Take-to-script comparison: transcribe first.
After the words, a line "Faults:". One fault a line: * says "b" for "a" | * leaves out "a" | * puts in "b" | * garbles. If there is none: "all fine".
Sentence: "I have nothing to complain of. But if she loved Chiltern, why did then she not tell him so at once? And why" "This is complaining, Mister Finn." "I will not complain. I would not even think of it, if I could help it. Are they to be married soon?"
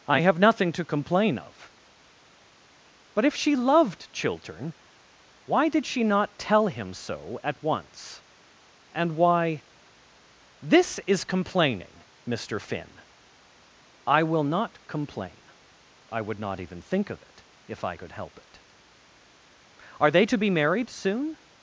"I have nothing to complain of. But if she loved Chiltern, why did she not tell him so at once? And why" "This is complaining, Mister Finn." "I will not complain. I would not even think of it, if I could help it. Are they to be married soon?"
Faults:
* leaves out "then"